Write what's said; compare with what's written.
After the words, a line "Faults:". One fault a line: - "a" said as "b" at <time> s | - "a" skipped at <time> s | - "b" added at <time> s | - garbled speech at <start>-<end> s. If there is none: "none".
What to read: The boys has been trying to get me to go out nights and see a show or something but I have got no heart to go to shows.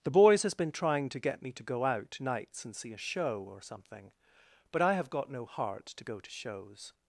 The boys has been trying to get me to go out nights and see a show or something but I have got no heart to go to shows.
Faults:
none